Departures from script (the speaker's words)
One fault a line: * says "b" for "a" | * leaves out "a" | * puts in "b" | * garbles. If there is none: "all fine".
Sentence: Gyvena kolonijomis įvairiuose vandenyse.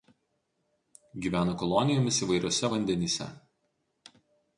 all fine